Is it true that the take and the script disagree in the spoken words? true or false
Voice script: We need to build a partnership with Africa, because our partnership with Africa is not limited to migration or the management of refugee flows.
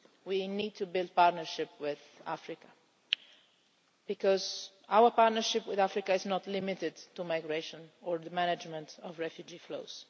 false